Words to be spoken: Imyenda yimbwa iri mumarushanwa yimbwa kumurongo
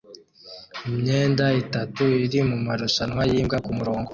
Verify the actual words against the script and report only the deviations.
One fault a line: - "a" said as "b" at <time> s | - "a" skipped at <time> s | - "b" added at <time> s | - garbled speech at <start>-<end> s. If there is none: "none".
- "yimbwa" said as "itatu" at 1.6 s